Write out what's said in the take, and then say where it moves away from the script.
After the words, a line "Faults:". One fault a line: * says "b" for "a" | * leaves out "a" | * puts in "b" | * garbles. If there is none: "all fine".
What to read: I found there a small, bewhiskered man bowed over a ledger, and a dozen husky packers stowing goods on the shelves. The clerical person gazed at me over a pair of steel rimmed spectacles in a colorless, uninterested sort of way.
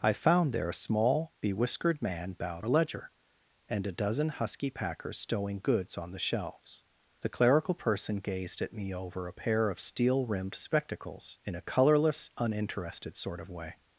I found there a small, bewhiskered man bowed a ledger, and a dozen husky packers stowing goods on the shelves. The clerical person gazed at me over a pair of steel rimmed spectacles in a colorless, uninterested sort of way.
Faults:
* leaves out "over"